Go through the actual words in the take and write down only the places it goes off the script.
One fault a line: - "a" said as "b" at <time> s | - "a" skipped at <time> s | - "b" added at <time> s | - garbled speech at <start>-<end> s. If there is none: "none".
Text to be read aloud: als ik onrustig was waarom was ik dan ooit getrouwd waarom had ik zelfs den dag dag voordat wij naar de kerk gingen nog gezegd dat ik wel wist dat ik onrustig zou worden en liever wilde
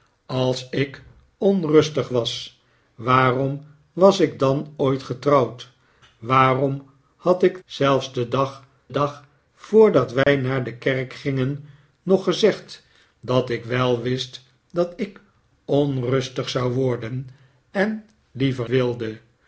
none